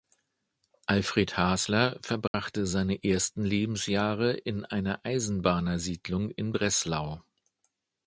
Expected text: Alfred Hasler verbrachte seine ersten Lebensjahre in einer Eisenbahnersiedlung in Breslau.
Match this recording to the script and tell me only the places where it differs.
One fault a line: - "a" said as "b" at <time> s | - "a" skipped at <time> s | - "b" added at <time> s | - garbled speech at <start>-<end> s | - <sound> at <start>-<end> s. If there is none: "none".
- dropout at 2.3-2.3 s